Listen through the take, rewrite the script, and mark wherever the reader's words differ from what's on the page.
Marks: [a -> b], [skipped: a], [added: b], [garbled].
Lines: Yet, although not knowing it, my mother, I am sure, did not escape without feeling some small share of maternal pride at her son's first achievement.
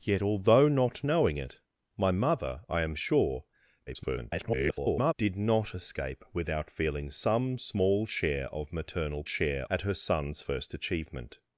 Yet, although not knowing it, my mother, I am sure, [garbled] did not escape without feeling some small share of maternal [pride -> share] at her son's first achievement.